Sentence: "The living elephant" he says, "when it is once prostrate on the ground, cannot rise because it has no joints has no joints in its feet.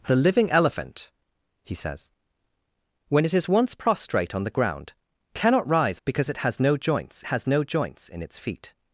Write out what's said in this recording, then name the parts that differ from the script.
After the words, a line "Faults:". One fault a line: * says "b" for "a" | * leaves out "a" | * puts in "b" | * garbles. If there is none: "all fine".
"The living elephant" he says, "when it is once prostrate on the ground, cannot rise because it has no joints has no joints in its feet.
Faults:
all fine